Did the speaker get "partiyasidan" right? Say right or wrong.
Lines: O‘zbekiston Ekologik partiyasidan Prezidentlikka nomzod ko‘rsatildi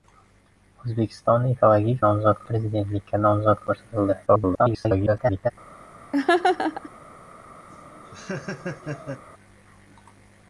wrong